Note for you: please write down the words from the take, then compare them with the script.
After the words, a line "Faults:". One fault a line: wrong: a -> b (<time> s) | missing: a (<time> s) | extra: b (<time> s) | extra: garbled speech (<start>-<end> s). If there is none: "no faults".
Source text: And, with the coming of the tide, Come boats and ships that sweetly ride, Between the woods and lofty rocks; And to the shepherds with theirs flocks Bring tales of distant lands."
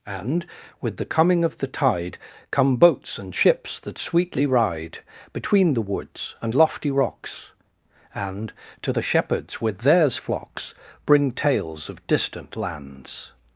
And, with the coming of the tide, Come boats and ships that sweetly ride, Between the woods and lofty rocks; And to the shepherds with theirs flocks Bring tales of distant lands."
Faults:
no faults